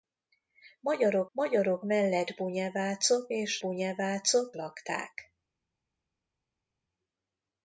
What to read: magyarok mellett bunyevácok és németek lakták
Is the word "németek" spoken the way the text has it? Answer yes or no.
no